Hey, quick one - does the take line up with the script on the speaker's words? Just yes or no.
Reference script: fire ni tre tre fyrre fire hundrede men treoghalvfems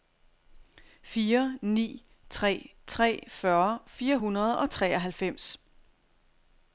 no